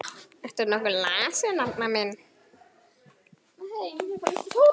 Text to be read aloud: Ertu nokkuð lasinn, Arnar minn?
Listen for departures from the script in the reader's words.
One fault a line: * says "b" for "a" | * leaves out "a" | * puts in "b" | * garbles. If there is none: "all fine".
all fine